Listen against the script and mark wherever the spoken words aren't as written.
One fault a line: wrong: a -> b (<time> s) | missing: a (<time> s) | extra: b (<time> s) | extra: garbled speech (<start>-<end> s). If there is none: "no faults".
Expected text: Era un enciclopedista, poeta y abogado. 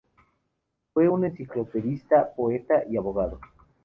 wrong: Era -> Fue (0.9 s)